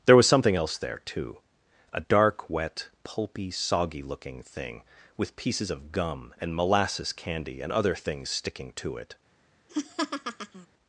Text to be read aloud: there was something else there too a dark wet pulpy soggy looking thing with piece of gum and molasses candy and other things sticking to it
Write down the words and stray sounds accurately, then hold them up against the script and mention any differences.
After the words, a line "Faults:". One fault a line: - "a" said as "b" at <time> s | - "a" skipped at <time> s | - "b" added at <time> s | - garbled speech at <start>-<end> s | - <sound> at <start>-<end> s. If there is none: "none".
there was something else there too a dark wet pulpy soggy looking thing with pieces of gum and molasses candy and other things sticking to it
Faults:
- "piece" said as "pieces" at 5.4 s
- laugh at 9.7-10.7 s